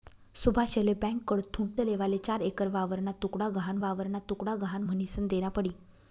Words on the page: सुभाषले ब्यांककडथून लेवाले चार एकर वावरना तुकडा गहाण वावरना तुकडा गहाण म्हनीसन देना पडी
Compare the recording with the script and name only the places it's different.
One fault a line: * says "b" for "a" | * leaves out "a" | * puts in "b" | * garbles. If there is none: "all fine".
all fine